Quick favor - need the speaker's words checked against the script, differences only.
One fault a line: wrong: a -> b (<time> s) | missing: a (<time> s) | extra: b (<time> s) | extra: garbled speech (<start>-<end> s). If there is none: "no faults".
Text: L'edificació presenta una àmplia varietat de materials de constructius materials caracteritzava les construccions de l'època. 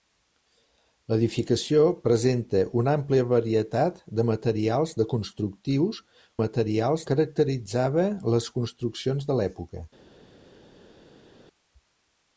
no faults